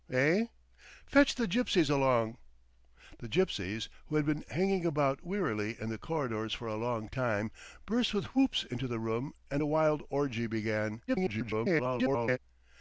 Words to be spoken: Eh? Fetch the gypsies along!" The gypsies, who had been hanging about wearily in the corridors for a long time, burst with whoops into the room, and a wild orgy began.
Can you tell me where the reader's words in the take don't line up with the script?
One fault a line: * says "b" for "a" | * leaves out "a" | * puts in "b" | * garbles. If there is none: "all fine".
* garbles